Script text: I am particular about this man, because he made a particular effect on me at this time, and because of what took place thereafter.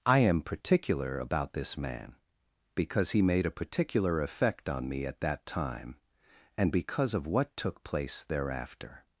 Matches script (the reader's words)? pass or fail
fail